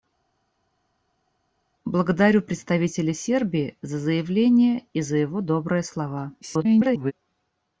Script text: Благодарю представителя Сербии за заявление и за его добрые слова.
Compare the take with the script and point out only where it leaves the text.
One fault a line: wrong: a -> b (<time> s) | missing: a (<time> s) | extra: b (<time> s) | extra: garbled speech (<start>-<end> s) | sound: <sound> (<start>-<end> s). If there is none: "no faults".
extra: garbled speech (6.4-7.1 s)